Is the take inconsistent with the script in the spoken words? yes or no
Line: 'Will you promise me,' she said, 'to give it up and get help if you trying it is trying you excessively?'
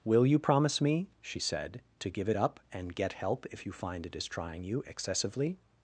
yes